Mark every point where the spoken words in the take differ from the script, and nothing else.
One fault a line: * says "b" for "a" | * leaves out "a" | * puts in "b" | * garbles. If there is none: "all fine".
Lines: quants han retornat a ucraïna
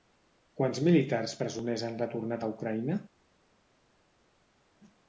* puts in "militars presoners"